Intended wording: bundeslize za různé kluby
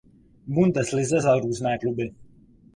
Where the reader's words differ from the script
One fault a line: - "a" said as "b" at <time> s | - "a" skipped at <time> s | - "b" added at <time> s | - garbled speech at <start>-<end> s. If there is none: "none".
none